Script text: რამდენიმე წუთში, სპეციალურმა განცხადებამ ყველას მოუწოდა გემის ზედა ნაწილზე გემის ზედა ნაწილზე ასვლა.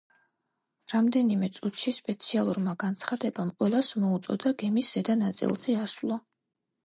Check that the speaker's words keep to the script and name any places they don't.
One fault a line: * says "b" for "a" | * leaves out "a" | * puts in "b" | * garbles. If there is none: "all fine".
* leaves out "გემის ზედა ნაწილზე"